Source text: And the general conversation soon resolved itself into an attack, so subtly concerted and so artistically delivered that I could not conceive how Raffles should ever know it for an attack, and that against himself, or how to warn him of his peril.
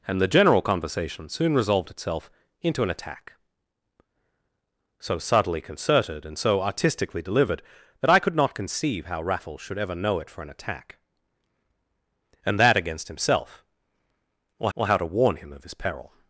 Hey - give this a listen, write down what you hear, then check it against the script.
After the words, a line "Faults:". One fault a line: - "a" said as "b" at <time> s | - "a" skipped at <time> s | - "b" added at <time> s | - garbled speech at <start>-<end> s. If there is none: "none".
And the general conversation soon resolved itself into an attack, so subtly concerted and so artistically delivered that I could not conceive how Raffles should ever know it for an attack, and that against himself, or or how to warn him of his peril.
Faults:
- "or" added at 14.7 s